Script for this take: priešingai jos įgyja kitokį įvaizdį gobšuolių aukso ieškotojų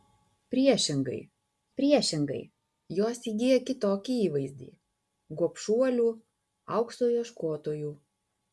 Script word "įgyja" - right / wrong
right